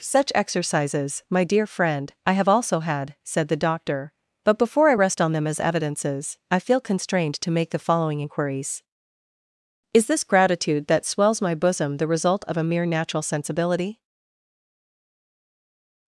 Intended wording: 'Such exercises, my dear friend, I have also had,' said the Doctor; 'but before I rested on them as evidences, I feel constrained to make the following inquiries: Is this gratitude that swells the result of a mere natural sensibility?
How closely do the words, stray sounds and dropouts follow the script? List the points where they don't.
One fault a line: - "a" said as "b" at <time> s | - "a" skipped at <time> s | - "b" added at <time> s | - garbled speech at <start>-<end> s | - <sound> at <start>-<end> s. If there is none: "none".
- "rested" said as "rest" at 4.9 s
- "my bosom" added at 11.4 s